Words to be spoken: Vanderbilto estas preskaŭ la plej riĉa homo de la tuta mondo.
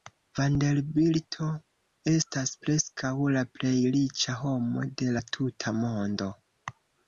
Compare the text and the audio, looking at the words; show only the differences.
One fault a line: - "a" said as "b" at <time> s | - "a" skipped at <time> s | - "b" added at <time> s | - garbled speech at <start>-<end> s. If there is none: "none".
none